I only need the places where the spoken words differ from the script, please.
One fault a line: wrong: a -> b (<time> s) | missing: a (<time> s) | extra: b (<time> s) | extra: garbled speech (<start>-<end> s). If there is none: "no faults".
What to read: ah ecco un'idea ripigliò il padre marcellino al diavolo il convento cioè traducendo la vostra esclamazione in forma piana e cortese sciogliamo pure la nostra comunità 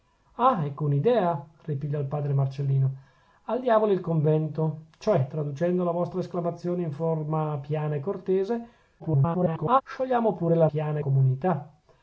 extra: garbled speech (9.0-9.8 s)
wrong: nostra -> piana (10.7 s)